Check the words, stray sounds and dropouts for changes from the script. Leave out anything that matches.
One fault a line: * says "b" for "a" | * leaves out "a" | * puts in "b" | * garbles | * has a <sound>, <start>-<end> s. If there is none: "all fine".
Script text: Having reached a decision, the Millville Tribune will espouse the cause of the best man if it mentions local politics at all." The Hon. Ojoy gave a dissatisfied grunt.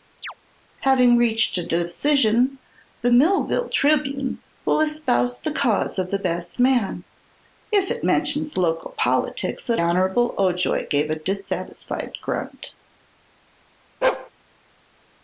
* has a chirp, 0.2-0.3 s
* leaves out "all The"
* has a bark, 14.0-14.3 s